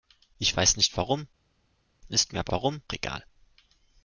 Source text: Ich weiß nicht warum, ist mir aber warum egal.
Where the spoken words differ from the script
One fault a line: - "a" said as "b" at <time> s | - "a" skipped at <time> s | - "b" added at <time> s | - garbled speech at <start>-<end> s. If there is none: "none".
none